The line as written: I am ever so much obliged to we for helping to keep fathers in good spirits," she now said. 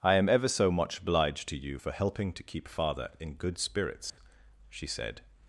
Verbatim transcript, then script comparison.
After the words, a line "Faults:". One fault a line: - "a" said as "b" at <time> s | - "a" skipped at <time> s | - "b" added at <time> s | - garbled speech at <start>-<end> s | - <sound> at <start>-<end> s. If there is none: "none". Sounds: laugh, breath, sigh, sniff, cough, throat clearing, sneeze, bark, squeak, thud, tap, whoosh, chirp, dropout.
I am ever so much obliged to you for helping to keep father in good spirits," she said.
Faults:
- "we" said as "you" at 1.6 s
- "fathers" said as "father" at 2.7 s
- dropout at 4.1-4.2 s
- "now" skipped at 4.9 s